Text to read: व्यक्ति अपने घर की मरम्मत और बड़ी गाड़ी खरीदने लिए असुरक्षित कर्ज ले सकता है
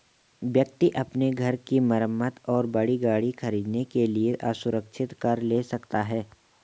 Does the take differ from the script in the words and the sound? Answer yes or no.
yes